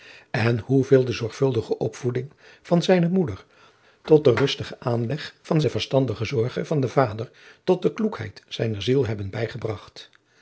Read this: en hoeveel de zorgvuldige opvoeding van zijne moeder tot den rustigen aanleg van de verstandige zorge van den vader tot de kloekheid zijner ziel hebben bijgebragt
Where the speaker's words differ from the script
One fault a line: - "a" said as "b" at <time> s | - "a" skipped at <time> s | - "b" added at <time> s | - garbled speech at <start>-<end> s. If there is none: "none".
none